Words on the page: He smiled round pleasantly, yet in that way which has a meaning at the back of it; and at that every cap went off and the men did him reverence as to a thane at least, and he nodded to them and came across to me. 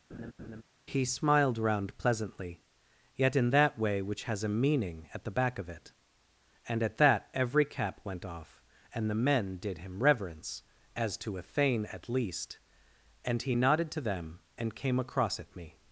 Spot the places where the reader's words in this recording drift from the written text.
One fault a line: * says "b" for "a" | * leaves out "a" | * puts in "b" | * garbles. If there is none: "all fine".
* says "at" for "to"